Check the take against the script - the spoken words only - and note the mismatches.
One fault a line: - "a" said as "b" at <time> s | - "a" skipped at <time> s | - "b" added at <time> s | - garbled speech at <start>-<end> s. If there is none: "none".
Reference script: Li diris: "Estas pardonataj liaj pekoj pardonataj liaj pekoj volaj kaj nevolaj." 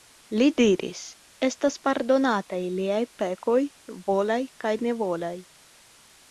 - "pardonataj liaj pekoj" skipped at 3.6 s